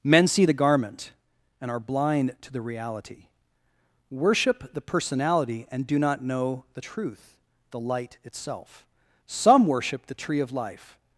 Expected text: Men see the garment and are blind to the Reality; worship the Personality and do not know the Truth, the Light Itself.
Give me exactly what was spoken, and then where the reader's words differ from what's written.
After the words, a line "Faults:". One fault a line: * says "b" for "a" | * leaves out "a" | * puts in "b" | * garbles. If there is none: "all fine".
Men see the garment and are blind to the Reality; worship the Personality and do not know the Truth, the Light Itself. Some worship the Tree of Life
Faults:
* puts in "Some worship the Tree of Life"